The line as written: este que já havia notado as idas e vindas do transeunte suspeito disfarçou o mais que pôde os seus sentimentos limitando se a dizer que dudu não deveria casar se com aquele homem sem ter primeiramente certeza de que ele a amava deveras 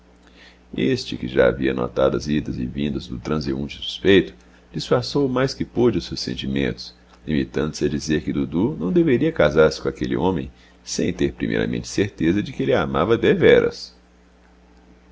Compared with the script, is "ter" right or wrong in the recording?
right